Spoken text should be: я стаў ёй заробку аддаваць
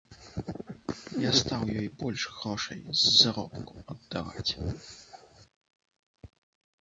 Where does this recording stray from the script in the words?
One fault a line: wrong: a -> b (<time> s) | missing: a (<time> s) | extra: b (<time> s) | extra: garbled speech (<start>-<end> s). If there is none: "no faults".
extra: больш грошай з (2.0 s)